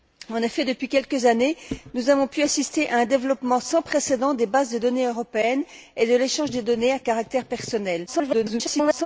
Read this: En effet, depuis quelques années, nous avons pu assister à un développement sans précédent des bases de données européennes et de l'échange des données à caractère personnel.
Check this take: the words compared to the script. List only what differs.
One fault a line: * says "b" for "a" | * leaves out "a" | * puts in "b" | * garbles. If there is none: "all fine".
* garbles